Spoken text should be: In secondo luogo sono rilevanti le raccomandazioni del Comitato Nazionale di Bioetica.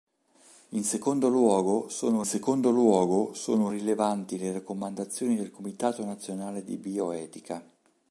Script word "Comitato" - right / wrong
right